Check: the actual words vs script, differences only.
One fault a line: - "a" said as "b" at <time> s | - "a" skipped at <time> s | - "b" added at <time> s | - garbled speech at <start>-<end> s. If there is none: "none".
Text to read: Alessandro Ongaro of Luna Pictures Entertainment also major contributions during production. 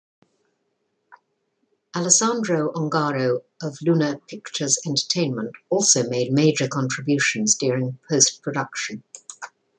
- "made" added at 6.1 s
- "post" added at 8.1 s